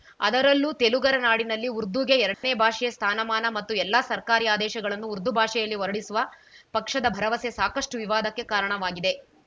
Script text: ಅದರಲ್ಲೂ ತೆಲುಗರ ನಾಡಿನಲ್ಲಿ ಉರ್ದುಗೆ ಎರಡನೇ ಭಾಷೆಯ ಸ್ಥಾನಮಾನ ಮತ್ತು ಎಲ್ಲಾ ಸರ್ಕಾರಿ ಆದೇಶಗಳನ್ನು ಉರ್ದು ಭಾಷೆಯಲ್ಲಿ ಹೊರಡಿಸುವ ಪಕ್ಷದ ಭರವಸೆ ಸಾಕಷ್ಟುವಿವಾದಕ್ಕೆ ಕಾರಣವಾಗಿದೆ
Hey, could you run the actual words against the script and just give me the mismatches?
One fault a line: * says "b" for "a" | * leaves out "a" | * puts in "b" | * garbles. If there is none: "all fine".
all fine